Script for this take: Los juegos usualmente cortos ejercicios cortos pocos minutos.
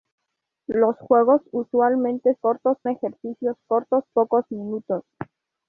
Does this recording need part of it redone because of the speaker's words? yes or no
no